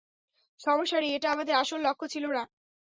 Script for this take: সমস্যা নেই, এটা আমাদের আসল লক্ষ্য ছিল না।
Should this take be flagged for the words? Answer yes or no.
no